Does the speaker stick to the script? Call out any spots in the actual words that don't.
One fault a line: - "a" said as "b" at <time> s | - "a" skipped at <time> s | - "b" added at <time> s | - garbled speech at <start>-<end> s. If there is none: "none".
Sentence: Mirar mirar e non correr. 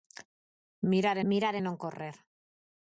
none